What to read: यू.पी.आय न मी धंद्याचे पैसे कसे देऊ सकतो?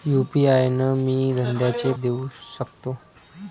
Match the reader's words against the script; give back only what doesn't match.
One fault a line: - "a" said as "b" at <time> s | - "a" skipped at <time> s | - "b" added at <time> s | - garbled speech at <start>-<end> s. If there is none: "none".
- "पैसे कसे" skipped at 1.9 s